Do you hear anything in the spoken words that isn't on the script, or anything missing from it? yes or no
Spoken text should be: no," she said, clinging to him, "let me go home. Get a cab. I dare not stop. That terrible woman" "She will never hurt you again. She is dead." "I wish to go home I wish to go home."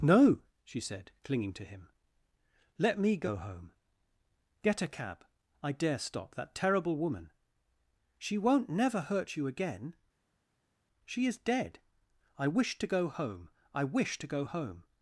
yes